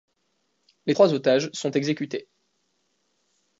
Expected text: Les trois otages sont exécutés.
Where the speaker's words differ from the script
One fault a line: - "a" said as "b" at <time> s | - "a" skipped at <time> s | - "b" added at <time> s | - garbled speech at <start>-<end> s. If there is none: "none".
none